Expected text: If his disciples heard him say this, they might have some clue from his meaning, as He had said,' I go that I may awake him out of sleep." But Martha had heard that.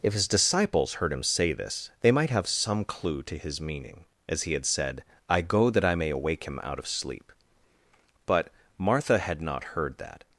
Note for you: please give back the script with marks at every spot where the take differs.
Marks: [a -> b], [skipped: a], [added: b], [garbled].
If his disciples heard him say this, they might have some clue [from -> to] his meaning, as He had said,' I go that I may awake him out of sleep." But Martha had [added: not] heard that.